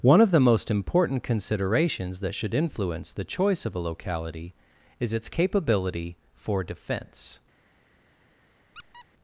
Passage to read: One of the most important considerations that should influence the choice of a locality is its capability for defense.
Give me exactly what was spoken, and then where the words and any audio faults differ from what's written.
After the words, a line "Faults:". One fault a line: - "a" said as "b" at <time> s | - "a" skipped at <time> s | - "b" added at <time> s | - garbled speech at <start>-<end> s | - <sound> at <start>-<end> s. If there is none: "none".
One of the most important considerations that should influence the choice of a locality is its capability for defense.
Faults:
- squeak at 8.7-9.1 s